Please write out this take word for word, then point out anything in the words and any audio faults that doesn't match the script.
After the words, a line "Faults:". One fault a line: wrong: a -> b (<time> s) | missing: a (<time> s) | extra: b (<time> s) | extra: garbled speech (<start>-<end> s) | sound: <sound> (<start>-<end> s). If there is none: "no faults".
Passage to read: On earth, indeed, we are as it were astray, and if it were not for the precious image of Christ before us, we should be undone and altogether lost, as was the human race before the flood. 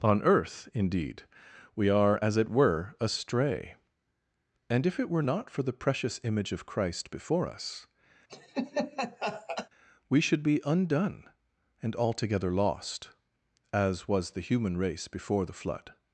On earth, indeed, we are as it were astray, and if it were not for the precious image of Christ before us, we should be undone and altogether lost, as was the human race before the flood.
Faults:
sound: laugh (8.3-9.7 s)